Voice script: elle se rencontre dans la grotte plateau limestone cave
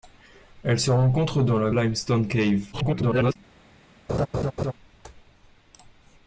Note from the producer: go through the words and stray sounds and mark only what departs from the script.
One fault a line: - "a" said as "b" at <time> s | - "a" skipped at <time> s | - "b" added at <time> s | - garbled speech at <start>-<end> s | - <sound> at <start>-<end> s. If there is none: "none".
- "grotte plateau" skipped at 1.7 s
- garbled speech at 2.7-3.4 s
- laugh at 4.1-4.7 s